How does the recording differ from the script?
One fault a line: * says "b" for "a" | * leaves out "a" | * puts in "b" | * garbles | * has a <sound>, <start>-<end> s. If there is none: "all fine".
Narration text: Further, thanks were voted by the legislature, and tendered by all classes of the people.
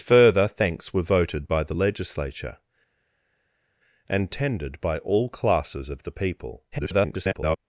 * garbles